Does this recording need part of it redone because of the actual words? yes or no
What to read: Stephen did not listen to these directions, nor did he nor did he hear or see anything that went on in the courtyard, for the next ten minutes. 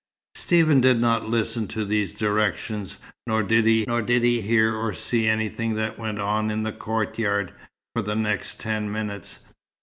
no